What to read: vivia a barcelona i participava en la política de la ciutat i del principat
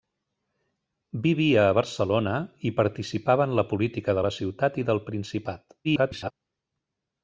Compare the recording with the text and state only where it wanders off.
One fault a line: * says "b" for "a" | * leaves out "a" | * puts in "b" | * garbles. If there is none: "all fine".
* garbles